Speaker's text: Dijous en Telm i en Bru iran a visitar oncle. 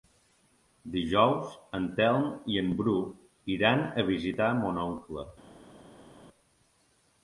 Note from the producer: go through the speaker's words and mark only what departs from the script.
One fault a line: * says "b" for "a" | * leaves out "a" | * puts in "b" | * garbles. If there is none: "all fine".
* puts in "mon"